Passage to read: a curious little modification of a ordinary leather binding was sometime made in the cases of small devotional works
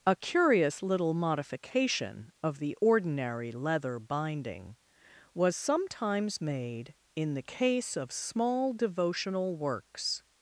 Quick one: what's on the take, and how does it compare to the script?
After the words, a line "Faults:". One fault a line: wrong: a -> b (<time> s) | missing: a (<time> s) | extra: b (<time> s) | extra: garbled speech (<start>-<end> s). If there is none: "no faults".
a curious little modification of the ordinary leather binding was sometimes made in the case of small devotional works
Faults:
wrong: a -> the (2.6 s)
wrong: sometime -> sometimes (5.6 s)
wrong: cases -> case (7.4 s)